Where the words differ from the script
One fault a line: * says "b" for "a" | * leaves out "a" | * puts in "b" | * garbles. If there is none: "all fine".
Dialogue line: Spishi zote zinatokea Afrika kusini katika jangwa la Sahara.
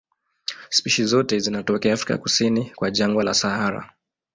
* says "kwa" for "katika"